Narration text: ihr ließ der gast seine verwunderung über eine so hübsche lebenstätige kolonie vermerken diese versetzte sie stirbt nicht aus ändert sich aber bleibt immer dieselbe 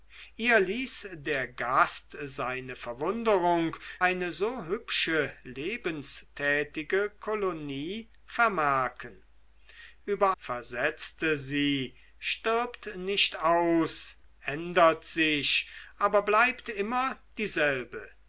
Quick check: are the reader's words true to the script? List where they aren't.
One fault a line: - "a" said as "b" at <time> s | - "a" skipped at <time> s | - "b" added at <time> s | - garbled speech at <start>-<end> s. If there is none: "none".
- "über" skipped at 3.8 s
- "diese" said as "über" at 10.1 s